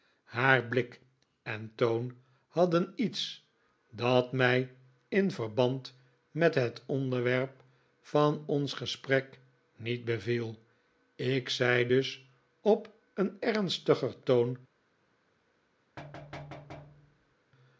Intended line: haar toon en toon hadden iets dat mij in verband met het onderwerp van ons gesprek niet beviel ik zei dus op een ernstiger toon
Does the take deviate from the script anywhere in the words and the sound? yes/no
yes